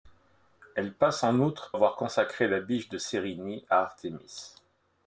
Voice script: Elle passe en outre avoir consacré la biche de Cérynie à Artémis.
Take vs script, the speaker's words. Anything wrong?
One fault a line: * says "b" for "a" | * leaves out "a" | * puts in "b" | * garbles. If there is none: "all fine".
all fine